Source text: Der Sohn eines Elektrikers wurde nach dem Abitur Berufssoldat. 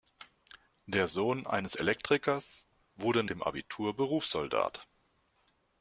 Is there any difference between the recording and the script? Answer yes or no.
yes